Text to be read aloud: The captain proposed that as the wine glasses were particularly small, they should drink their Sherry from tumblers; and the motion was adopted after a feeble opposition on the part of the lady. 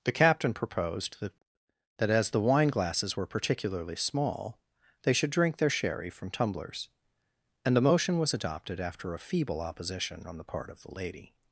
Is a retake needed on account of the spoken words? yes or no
yes